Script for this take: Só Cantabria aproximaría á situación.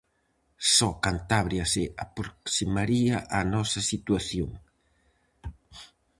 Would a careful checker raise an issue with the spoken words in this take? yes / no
yes